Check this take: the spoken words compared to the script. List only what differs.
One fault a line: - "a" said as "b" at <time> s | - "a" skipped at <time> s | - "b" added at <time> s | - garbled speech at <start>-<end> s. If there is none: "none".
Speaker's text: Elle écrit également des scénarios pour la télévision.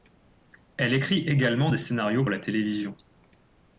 - "pour" skipped at 2.2 s